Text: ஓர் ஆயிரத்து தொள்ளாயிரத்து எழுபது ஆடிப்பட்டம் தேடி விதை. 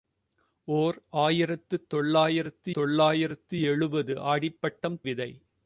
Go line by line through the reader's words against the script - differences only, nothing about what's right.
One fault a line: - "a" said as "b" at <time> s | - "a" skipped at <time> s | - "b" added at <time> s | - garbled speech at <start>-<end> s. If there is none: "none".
- "தொள்ளாயிரத்து" added at 2.7 s
- "தேடி" skipped at 5.0 s